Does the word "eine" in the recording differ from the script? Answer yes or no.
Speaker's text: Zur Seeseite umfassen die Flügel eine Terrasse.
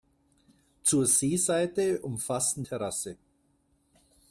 yes